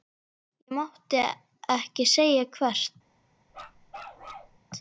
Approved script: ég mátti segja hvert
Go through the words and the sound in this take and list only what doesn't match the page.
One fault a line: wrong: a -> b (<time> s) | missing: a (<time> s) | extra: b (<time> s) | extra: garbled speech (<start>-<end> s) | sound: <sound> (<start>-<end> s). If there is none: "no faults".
extra: ekki (1.6 s)
sound: bark (3.5-4.6 s)